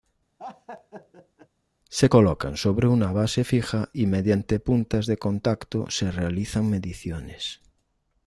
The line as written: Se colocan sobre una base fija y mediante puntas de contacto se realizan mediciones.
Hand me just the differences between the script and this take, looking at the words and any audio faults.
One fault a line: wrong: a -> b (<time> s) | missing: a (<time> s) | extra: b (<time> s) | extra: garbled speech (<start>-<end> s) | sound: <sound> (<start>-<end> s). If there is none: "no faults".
sound: laugh (0.4-1.5 s)